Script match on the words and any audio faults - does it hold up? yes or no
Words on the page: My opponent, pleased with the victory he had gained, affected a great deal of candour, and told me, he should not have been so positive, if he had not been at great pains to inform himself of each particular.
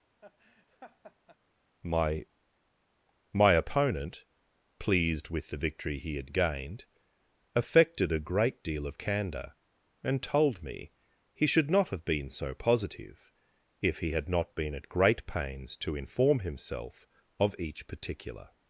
no